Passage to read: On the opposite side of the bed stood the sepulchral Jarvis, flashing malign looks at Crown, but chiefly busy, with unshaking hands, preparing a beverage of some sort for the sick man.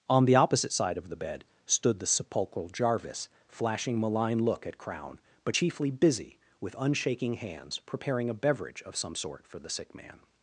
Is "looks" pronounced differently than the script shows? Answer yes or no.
yes